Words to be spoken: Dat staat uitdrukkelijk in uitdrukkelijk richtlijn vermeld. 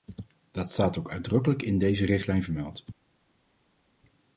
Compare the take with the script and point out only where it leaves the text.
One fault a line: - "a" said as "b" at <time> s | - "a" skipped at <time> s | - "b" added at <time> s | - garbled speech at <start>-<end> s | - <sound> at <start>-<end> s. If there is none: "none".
- "ook" added at 1.0 s
- "uitdrukkelijk" said as "deze" at 1.8 s